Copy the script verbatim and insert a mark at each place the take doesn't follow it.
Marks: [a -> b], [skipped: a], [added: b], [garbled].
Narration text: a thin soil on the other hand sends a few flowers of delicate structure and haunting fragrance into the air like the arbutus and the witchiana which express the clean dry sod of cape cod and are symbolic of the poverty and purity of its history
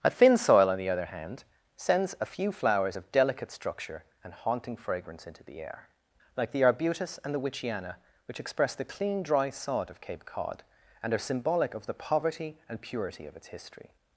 a thin soil on the other hand sends a few flowers of delicate structure and haunting fragrance into the air like the arbutus and the witchiana which express the clean dry sod of cape cod and are symbolic of the poverty and purity of its history